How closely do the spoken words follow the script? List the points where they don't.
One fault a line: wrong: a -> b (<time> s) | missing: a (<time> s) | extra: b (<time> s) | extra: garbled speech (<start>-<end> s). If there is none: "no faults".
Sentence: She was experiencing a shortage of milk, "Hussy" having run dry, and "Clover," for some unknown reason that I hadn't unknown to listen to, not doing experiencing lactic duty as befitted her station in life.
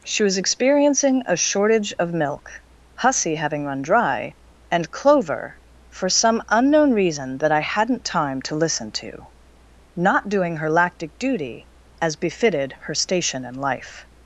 wrong: unknown -> time (8.0 s)
wrong: experiencing -> her (10.6 s)